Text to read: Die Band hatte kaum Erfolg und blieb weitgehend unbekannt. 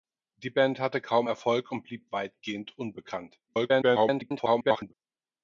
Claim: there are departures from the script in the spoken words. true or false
true